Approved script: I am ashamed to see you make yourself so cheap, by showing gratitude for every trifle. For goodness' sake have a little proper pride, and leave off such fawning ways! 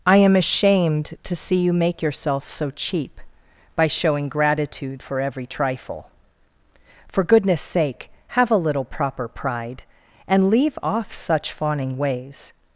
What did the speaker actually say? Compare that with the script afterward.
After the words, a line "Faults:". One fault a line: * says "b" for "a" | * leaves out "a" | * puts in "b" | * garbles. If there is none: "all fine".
I am ashamed to see you make yourself so cheap, by showing gratitude for every trifle. For goodness' sake have a little proper pride, and leave off such fawning ways!
Faults:
all fine